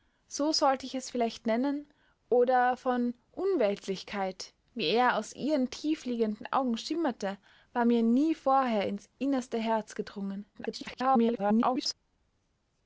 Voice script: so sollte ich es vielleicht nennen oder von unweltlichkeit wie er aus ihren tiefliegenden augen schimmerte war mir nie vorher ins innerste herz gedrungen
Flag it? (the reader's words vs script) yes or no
yes